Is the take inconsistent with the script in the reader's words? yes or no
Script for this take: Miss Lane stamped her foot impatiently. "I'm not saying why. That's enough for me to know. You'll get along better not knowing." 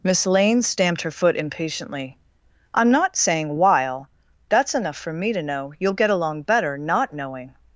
yes